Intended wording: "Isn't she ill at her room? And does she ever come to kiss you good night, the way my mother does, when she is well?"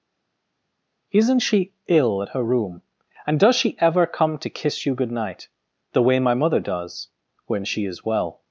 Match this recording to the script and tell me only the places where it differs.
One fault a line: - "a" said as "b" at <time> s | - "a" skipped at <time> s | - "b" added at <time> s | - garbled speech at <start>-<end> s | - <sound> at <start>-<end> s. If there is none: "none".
none